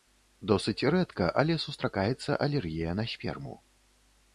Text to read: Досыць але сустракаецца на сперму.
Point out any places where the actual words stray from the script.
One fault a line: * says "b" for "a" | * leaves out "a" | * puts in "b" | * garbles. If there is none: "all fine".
* puts in "рэдка"
* puts in "алергія"